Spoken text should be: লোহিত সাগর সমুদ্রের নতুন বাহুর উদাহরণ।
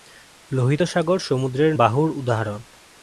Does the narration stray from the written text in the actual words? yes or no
yes